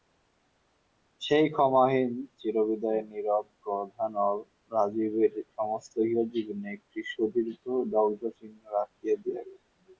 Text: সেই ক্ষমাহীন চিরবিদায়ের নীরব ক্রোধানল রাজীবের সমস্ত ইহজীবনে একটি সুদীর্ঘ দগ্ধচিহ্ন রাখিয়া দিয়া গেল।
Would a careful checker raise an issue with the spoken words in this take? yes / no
no